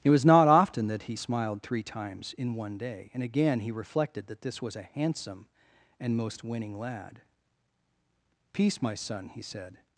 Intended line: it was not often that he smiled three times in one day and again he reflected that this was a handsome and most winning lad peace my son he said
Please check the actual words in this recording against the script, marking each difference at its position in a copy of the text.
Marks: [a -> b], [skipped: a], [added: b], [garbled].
it was not often that he smiled three times in one day and again he reflected that this was a handsome and most winning lad peace my son he said